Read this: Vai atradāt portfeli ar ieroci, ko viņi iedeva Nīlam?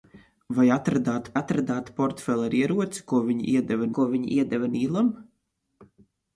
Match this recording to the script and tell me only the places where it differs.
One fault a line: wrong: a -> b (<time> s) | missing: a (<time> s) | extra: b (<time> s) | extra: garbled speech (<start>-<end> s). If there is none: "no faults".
extra: atradāt (1.4 s)
extra: ko viņi iedeva (4.0 s)